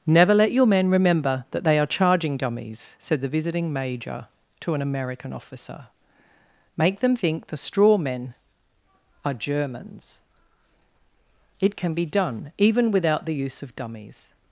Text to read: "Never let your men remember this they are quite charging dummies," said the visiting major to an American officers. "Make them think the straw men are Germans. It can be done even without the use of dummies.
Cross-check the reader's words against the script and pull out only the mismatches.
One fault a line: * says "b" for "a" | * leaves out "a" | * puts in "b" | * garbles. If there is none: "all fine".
* says "that" for "this"
* leaves out "quite"
* says "officer" for "officers"